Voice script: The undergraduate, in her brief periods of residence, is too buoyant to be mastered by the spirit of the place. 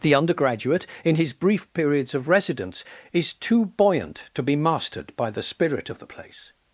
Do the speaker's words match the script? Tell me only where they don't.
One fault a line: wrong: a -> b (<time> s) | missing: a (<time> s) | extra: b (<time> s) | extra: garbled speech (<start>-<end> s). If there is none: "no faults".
wrong: her -> his (1.1 s)